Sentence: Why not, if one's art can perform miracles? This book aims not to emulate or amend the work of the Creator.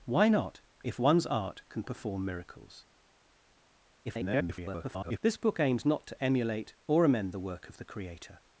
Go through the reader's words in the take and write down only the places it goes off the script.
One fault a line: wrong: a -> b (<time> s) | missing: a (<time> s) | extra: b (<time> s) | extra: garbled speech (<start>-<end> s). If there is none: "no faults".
extra: garbled speech (4.0-5.2 s)